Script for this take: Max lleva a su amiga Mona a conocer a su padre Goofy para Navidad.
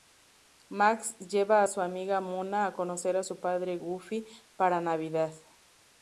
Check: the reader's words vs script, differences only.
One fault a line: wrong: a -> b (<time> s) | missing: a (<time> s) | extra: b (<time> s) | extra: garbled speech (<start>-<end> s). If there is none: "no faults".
no faults